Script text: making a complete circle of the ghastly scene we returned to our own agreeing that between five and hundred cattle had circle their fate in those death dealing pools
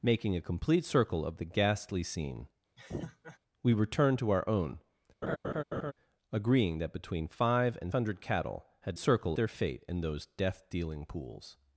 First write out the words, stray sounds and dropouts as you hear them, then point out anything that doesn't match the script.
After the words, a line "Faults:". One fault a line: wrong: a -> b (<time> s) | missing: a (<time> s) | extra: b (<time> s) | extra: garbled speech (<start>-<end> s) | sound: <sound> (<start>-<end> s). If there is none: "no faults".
making a complete circle of the ghastly scene we returned to our own agreeing that between five and hundred cattle had circle their fate in those death dealing pools
Faults:
sound: laugh (2.8-3.4 s)
sound: laugh (5.2-5.9 s)